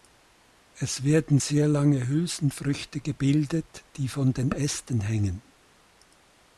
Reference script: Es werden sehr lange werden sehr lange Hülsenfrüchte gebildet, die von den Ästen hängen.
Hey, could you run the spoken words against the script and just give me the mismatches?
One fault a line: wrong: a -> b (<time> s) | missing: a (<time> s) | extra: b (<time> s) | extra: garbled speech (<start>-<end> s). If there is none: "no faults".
missing: werden sehr lange (2.1 s)